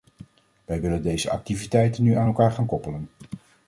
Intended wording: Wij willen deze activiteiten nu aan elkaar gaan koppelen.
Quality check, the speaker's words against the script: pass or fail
pass